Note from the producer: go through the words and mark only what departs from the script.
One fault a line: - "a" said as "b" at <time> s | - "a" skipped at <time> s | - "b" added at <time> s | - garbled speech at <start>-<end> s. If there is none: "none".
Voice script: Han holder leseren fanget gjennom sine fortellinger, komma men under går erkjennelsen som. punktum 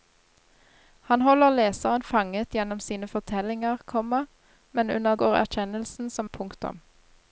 none